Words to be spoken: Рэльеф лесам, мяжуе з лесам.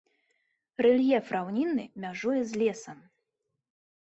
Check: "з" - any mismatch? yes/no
no